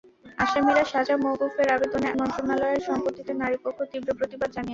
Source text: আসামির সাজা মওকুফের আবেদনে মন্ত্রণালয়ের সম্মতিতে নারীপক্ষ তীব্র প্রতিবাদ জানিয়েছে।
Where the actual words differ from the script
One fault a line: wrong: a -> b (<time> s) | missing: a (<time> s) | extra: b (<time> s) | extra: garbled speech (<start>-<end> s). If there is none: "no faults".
no faults